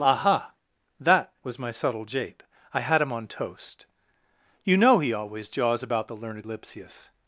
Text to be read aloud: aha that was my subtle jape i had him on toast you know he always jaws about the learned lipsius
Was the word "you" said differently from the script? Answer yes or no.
no